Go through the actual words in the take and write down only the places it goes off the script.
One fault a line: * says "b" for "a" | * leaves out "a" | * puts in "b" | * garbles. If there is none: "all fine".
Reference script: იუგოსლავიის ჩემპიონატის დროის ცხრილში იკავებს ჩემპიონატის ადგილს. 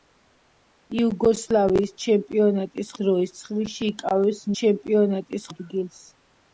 all fine